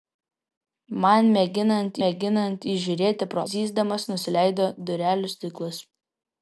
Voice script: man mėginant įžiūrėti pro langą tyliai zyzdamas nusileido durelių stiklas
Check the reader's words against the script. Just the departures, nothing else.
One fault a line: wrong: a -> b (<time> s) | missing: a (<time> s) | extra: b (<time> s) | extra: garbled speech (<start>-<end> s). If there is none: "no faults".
extra: mėginant (2.0 s)
missing: langą tyliai (3.5 s)